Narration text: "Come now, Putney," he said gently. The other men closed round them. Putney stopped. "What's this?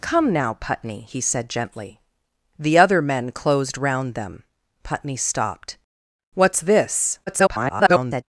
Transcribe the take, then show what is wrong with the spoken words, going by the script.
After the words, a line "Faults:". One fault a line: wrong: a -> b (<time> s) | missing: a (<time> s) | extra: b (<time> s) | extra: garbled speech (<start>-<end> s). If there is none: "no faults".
"Come now, Putney," he said gently. The other men closed round them. Putney stopped. "What's this? [garbled]
Faults:
extra: garbled speech (7.3-8.2 s)